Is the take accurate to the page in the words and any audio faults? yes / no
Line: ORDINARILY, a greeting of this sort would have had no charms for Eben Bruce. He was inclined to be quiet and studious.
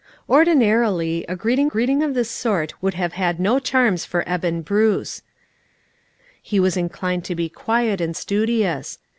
no